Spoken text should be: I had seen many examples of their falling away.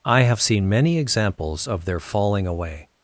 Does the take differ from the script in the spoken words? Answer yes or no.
yes